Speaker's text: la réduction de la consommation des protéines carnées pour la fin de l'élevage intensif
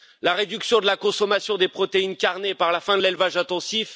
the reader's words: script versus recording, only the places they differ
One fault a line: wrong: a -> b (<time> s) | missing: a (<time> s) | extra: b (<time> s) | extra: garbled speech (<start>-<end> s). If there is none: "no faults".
wrong: pour -> par (2.5 s)